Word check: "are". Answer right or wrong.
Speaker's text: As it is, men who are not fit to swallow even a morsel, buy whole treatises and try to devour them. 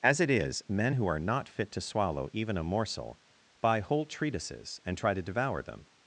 right